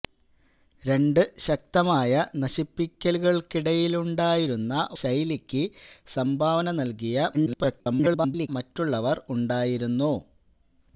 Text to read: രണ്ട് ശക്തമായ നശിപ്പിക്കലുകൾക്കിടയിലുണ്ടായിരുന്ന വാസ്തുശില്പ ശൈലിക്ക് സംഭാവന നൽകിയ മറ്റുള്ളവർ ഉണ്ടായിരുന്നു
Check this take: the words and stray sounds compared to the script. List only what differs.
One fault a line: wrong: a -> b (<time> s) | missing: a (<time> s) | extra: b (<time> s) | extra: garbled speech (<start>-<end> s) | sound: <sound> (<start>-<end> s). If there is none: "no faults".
missing: വാസ്തുശില്പ (4.7 s)
extra: garbled speech (7.3-8.5 s)